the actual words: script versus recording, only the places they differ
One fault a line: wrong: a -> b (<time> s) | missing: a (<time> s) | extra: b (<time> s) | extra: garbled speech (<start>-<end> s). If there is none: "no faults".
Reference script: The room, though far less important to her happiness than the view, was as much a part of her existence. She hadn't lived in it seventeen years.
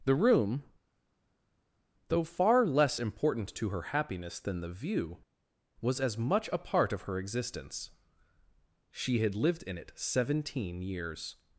wrong: hadn't -> had (9.2 s)